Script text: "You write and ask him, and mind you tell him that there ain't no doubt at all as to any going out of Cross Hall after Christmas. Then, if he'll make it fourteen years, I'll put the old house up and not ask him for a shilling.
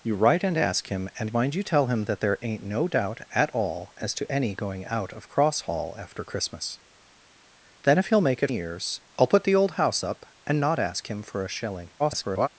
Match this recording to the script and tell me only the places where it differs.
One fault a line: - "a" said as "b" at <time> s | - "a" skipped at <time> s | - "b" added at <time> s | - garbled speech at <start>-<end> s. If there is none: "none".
- "fourteen" skipped at 8.5 s
- garbled speech at 12.0-12.5 s